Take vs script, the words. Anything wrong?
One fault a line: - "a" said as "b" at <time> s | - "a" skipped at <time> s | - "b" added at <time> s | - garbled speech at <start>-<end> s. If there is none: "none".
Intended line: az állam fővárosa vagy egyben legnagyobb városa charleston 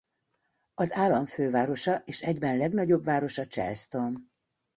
- "vagy" said as "és" at 2.0 s